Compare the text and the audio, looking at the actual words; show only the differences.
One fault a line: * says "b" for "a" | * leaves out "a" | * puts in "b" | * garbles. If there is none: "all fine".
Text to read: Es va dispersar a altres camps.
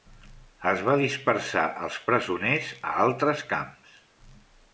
* puts in "els presoners"